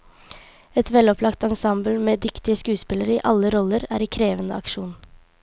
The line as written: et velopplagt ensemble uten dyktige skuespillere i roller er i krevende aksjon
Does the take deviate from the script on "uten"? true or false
true